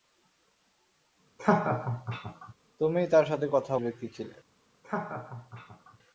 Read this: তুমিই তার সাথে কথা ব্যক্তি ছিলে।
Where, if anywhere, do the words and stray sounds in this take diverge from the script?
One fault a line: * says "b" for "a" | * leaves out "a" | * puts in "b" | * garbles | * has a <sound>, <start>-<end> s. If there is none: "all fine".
* has a laugh, 1.4-2.5 s
* has a laugh, 4.8-6.0 s